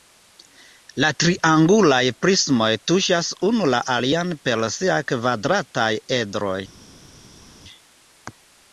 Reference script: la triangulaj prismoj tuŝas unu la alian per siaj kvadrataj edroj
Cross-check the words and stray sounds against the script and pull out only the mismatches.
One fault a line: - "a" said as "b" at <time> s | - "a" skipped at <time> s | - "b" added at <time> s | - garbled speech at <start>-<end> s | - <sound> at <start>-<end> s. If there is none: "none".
none